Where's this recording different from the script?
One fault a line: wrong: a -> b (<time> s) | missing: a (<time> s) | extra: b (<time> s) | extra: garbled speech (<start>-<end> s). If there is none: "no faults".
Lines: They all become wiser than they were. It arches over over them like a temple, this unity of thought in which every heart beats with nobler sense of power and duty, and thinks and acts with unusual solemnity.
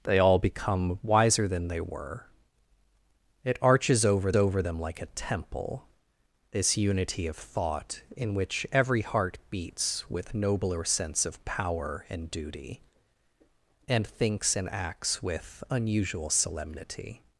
no faults